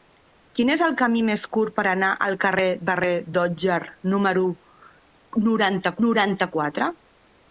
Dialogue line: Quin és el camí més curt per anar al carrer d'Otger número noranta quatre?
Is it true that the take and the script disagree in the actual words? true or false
true